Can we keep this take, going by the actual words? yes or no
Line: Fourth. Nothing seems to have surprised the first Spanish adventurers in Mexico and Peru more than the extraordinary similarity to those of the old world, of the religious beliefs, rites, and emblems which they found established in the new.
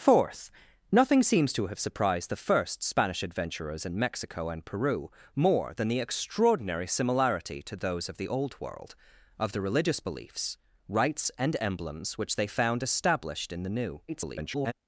no